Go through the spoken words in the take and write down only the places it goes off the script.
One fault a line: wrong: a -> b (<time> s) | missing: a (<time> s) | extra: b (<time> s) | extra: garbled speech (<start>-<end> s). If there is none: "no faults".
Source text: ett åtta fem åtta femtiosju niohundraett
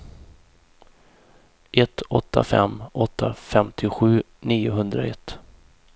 no faults